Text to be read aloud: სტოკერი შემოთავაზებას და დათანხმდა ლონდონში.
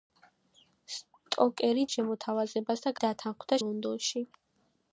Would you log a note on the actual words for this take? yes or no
no